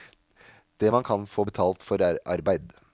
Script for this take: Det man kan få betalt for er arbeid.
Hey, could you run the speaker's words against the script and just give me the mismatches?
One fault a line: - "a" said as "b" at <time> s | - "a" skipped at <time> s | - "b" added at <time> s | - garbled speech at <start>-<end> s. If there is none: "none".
none